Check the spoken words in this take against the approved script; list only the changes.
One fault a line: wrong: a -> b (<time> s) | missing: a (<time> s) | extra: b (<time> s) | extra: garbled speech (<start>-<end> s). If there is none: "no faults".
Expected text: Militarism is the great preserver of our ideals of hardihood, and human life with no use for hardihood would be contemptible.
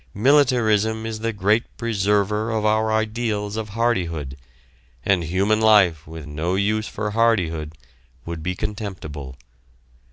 no faults